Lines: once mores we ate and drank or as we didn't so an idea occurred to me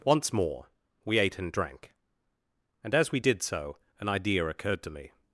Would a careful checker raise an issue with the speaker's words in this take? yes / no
yes